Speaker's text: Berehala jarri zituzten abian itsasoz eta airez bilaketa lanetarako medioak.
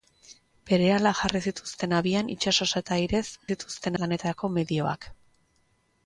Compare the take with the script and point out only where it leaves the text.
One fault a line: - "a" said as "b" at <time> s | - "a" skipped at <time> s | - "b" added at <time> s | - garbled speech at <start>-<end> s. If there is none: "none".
- "bilaketa" said as "zituzten" at 3.5 s